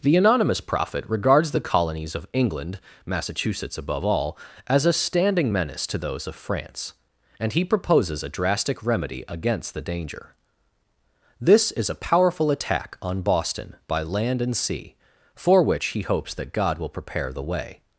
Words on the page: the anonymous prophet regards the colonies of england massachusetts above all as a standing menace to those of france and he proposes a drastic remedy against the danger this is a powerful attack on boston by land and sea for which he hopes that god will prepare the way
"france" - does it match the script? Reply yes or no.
yes